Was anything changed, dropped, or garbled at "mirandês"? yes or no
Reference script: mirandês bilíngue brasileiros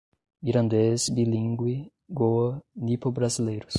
no